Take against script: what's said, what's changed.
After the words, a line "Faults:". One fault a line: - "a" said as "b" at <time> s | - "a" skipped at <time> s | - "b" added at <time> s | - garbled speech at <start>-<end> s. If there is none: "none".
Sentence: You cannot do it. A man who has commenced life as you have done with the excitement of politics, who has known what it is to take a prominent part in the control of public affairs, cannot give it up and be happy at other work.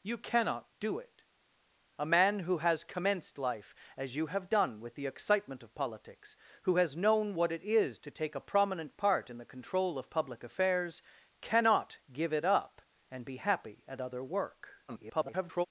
You cannot do it. A man who has commenced life as you have done with the excitement of politics, who has known what it is to take a prominent part in the control of public affairs, cannot give it up and be happy at other work. [garbled]
Faults:
- garbled speech at 14.9-15.7 s